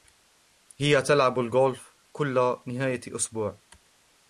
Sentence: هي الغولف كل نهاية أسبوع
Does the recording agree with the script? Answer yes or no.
no